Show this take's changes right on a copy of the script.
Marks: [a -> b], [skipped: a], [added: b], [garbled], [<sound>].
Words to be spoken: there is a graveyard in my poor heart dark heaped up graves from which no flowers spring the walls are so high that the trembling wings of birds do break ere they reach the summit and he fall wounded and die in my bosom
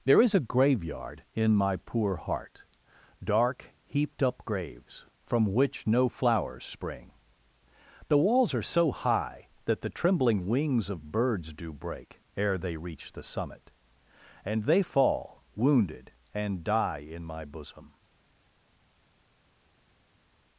there is a graveyard in my poor heart dark heaped up graves from which no flowers spring the walls are so high that the trembling wings of birds do break ere they reach the summit and [he -> they] fall wounded and die in my bosom